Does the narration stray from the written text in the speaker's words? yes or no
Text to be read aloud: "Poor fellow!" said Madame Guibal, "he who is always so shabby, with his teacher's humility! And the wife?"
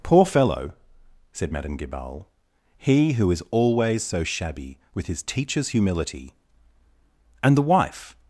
no